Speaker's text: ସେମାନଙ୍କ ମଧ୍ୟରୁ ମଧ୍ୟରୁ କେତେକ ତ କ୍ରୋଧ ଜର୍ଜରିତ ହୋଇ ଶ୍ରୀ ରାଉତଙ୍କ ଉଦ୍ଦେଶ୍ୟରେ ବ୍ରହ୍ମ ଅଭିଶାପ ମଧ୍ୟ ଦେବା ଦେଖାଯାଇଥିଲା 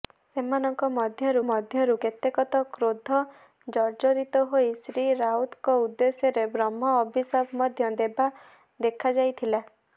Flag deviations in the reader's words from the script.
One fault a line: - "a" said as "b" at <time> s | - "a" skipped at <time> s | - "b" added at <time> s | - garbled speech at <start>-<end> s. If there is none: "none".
none